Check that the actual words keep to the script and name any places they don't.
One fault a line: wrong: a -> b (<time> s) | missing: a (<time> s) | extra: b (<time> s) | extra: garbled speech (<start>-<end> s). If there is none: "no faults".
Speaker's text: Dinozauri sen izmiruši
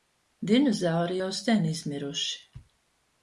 extra: jau (1.2 s)